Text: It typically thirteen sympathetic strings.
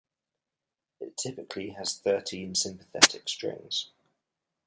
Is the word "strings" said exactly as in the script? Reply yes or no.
yes